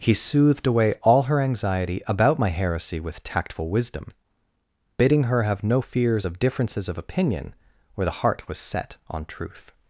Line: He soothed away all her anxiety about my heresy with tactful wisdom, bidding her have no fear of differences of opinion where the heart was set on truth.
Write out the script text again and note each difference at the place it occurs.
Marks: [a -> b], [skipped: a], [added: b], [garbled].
He soothed away all her anxiety about my heresy with tactful wisdom, bidding her have no [fear -> fears] of differences of opinion where the heart was set on truth.